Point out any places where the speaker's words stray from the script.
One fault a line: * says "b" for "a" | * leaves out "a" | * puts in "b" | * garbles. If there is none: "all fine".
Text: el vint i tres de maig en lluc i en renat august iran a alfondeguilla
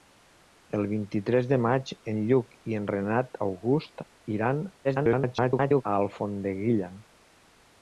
* garbles